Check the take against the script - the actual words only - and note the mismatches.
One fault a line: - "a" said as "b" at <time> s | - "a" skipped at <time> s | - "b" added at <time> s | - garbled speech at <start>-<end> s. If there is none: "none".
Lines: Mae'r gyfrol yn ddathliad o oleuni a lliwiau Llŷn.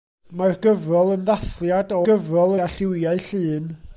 - "oleuni" said as "gyfrol" at 2.1 s